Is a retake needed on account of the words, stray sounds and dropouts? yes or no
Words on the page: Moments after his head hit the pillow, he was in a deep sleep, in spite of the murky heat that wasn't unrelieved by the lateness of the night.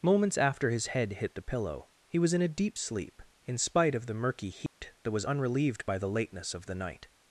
yes